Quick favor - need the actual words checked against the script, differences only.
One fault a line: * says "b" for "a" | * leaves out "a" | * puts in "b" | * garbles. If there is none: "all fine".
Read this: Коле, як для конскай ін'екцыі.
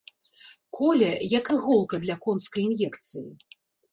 * puts in "іголка"